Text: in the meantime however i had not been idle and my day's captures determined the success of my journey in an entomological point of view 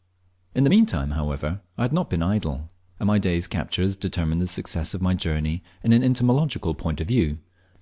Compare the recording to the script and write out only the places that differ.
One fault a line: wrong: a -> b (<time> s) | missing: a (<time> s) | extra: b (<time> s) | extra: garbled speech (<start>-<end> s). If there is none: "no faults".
no faults